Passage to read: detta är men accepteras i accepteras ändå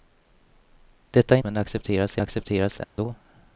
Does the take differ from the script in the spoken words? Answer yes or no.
no